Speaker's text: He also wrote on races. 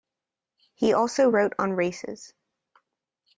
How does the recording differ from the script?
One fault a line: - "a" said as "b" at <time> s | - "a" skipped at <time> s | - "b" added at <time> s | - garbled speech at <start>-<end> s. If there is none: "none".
none